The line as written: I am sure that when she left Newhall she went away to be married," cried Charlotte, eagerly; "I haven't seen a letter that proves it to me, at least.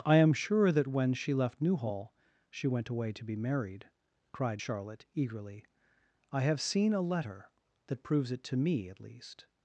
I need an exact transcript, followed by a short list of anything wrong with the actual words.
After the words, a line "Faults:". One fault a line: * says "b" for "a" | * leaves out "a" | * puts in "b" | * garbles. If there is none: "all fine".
I am sure that when she left Newhall she went away to be married," cried Charlotte, eagerly; "I have seen a letter that proves it to me, at least.
Faults:
* says "have" for "haven't"